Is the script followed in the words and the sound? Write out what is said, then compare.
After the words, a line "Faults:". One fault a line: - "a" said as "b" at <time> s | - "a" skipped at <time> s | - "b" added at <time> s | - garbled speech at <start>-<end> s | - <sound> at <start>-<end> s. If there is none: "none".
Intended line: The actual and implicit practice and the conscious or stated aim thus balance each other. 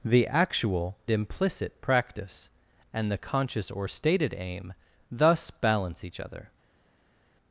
The actual implicit practice and the conscious or stated aim thus balance each other.
Faults:
- "and" skipped at 1.0 s